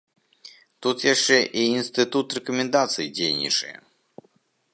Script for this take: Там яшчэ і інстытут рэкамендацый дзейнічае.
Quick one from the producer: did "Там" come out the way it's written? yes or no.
no